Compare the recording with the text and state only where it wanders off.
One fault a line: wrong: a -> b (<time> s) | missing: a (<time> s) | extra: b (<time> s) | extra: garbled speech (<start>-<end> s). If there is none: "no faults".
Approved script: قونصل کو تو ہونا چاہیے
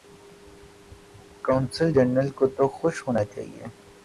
extra: جنرل (1.9 s)
extra: خوش (2.7 s)